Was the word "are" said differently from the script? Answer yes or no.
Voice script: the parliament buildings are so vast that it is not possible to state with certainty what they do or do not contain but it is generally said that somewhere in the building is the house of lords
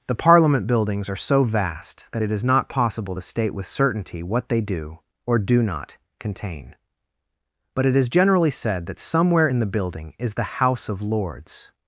no